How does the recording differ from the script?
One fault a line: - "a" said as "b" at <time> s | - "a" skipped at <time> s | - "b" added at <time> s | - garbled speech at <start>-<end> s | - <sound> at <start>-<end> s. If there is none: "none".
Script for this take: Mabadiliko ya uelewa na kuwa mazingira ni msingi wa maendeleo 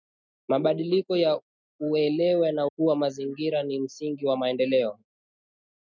none